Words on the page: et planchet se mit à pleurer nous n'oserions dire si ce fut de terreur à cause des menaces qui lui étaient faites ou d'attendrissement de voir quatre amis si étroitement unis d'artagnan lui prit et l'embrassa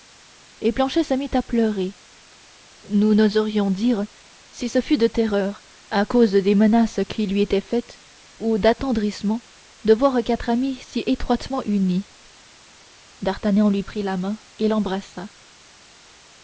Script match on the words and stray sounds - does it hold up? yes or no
no